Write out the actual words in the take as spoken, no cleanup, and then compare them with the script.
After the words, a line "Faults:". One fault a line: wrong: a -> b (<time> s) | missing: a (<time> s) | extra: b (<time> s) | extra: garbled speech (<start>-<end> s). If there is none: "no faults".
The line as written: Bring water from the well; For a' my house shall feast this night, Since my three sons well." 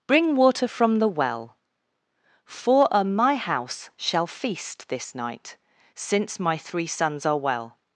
Bring water from the well; For a' my house shall feast this night, Since my three sons are well."
Faults:
extra: are (7.2 s)